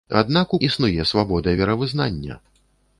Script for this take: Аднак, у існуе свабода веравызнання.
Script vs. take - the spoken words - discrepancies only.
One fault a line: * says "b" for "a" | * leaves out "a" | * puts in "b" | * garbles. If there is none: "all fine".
all fine